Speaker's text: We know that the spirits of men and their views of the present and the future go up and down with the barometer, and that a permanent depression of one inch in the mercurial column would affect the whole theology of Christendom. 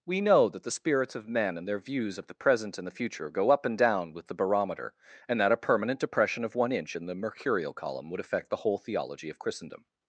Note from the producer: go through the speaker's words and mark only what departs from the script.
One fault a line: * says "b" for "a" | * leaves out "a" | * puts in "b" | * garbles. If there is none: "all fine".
all fine